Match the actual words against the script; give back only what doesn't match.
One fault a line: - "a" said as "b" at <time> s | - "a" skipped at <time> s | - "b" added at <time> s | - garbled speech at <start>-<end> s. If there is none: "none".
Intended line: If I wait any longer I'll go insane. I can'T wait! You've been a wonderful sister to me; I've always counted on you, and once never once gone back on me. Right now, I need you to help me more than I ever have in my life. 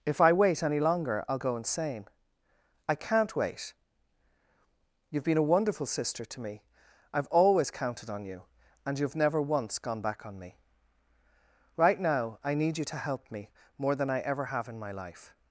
- "once" said as "you've" at 9.0 s